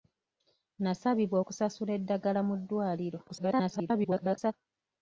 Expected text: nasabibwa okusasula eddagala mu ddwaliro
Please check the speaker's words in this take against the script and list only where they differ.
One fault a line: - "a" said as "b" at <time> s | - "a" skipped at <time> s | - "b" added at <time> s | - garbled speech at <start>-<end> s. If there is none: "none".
- garbled speech at 3.3-4.5 s